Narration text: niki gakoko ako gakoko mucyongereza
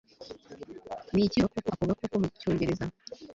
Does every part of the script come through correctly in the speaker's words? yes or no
yes